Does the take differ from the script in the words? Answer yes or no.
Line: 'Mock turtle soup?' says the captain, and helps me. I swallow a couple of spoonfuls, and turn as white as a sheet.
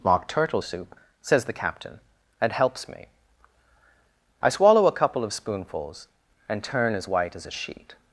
no